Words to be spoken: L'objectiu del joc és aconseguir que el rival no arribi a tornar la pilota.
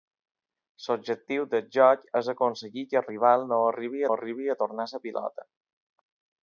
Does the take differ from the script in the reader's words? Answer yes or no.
yes